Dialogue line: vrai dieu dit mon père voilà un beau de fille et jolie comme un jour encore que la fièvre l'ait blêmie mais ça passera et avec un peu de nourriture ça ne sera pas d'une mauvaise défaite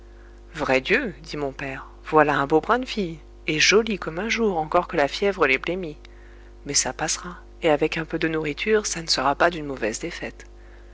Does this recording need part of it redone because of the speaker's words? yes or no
yes